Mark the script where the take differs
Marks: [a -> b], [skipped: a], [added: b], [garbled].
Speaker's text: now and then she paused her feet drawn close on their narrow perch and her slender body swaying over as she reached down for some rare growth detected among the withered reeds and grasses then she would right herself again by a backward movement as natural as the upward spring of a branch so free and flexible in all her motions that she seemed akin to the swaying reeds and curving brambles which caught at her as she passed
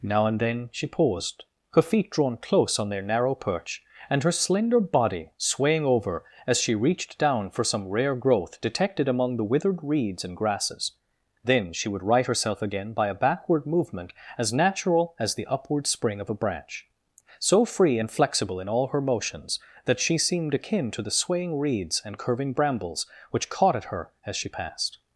now and then she paused her feet drawn close on their narrow perch and her slender body swaying over as she reached down for some rare growth detected among the withered reeds and grasses then she would right herself again by a backward movement as natural as the upward spring of a branch so free and flexible in all her motions that she seemed akin to the swaying reeds and curving brambles which caught at her as she passed